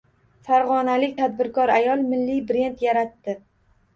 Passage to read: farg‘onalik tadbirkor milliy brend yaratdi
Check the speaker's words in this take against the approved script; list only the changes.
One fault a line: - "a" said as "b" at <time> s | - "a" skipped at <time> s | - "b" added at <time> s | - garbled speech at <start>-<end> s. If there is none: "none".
- "ayol" added at 1.8 s